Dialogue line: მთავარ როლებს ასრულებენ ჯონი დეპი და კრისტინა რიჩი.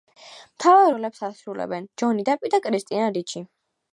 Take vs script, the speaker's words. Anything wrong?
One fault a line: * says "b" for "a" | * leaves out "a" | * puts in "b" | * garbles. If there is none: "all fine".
all fine